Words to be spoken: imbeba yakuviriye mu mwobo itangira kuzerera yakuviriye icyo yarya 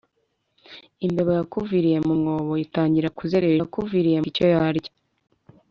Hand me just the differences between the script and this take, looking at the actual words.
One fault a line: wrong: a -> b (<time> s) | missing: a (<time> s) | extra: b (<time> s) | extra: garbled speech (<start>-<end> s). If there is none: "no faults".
no faults